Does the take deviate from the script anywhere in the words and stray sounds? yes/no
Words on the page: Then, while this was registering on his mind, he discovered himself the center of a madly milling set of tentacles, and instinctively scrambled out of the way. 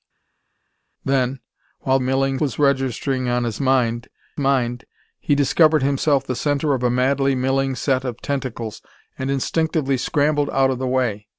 yes